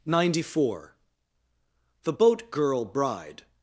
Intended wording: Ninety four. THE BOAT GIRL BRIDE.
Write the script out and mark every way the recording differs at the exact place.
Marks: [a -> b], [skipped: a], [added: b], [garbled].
Ninety four. THE BOAT GIRL BRIDE.